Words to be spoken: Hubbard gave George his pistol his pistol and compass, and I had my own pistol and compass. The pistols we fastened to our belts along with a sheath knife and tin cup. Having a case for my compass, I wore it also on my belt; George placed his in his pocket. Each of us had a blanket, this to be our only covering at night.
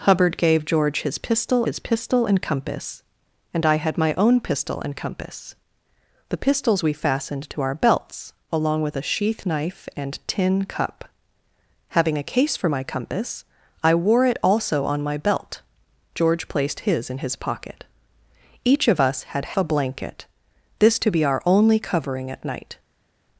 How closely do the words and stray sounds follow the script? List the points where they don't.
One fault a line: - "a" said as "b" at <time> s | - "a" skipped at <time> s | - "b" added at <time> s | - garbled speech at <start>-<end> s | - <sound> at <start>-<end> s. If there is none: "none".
none